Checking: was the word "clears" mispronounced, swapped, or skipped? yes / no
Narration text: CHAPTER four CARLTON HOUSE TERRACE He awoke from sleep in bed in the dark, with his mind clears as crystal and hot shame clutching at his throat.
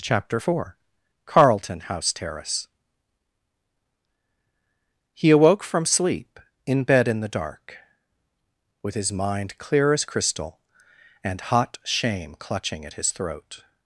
yes